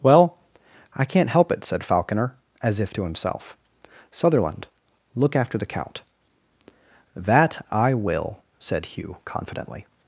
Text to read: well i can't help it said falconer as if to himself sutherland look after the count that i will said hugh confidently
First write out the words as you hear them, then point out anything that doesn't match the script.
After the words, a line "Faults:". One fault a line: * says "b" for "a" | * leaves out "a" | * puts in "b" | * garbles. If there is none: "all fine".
well i can't help it said falconer as if to himself sutherland look after the count that i will said hugh confidently
Faults:
all fine